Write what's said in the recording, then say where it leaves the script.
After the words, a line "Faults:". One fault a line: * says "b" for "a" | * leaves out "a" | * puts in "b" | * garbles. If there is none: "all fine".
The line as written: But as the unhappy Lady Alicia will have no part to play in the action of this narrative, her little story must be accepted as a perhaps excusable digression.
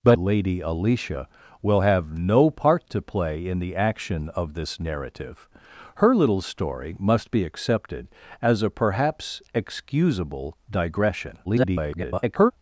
But Lady Alicia will have no part to play in the action of this narrative, her little story must be accepted as a perhaps excusable digression. [garbled]
Faults:
* leaves out "as the unhappy"
* garbles